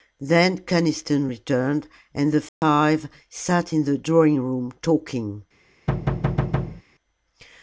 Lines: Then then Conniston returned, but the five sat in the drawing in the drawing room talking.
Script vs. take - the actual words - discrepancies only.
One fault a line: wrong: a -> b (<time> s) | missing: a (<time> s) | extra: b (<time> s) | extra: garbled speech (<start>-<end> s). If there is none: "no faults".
missing: then (0.6 s)
wrong: but -> and (2.1 s)
missing: in the drawing (4.4 s)